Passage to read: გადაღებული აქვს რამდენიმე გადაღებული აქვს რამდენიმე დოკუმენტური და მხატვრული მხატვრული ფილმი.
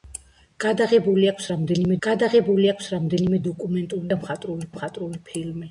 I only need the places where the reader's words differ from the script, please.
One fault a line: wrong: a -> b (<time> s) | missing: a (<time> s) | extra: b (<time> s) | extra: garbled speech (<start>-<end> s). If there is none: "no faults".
no faults